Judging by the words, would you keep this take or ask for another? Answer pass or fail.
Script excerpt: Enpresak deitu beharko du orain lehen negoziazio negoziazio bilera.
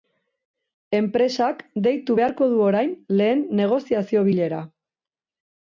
fail